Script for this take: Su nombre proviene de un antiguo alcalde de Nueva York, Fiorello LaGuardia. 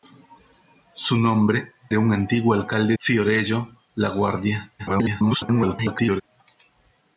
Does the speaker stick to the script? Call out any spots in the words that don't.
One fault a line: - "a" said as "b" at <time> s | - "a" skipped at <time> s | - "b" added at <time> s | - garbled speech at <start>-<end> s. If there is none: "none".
- "proviene" skipped at 1.7 s
- "de Nueva York" skipped at 3.0 s
- garbled speech at 4.8-6.2 s